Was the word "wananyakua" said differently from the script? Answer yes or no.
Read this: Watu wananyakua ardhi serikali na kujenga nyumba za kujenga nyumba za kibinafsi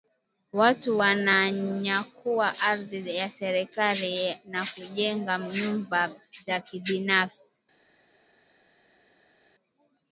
no